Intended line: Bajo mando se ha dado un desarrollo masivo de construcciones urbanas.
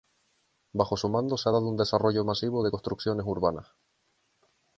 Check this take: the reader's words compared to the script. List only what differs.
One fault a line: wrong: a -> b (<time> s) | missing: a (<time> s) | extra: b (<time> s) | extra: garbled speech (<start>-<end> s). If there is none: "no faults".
extra: su (1.0 s)